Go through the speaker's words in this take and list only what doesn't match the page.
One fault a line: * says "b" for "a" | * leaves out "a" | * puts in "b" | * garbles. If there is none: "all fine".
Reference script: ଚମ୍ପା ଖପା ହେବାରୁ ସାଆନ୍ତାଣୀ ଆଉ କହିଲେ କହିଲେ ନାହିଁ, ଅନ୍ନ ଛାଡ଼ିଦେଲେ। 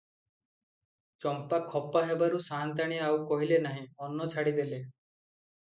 * leaves out "କହିଲେ"